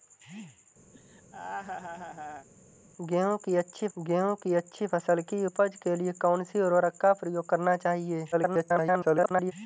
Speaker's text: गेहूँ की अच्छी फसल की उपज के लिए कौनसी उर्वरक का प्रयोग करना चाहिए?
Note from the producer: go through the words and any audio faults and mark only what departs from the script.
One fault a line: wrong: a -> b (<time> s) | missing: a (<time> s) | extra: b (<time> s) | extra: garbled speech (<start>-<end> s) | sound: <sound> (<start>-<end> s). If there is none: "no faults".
sound: laugh (0.9-2.5 s)
extra: गेहूँ की अच्छी (4.0 s)
extra: garbled speech (8.3-9.5 s)